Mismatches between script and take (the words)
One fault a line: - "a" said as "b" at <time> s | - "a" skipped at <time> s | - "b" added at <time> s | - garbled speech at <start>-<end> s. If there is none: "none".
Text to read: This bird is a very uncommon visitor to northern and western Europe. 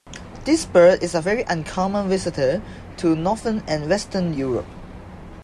none